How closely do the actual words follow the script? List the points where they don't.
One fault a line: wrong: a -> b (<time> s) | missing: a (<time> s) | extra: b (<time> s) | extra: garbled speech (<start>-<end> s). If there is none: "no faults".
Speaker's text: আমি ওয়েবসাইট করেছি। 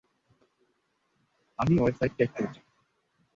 extra: চেক (2.2 s)